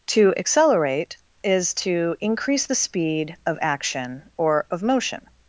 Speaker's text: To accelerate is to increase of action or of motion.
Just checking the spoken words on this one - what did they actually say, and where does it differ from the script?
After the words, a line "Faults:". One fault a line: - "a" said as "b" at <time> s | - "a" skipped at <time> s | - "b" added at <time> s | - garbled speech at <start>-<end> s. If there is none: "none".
To accelerate is to increase the speed of action or of motion.
Faults:
- "the speed" added at 2.7 s